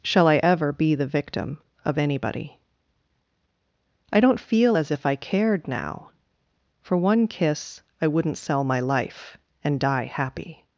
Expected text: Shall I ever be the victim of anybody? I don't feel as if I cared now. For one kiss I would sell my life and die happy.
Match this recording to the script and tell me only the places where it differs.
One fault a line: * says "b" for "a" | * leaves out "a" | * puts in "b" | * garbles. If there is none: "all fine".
* says "wouldn't" for "would"